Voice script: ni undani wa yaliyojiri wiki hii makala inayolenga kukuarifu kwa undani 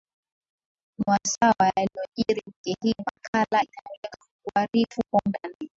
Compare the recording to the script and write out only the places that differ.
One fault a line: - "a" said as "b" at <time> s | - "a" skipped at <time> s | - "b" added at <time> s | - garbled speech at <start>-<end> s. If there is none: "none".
- "undani" said as "wasaa" at 1.1 s